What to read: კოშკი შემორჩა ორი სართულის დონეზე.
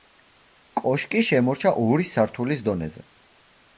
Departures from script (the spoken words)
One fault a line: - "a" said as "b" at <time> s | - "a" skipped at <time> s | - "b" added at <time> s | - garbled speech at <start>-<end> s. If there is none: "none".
none